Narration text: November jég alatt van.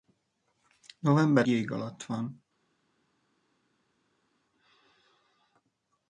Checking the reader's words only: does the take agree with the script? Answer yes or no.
yes